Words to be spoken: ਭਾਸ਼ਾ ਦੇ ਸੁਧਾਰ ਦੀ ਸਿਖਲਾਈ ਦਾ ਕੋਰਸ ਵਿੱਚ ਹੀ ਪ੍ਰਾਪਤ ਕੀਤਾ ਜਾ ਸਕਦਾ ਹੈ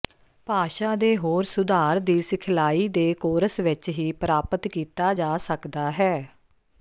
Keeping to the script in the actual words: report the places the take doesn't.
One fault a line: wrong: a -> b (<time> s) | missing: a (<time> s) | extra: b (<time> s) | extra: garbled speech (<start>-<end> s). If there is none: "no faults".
extra: ਹੋਰ (1.2 s)
wrong: ਦਾ -> ਦੇ (2.9 s)